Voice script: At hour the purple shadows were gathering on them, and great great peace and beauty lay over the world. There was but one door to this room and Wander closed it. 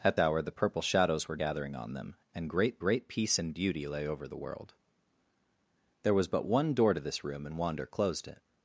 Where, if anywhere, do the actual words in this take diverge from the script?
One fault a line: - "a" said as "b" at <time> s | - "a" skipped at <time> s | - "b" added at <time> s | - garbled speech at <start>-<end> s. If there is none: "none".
none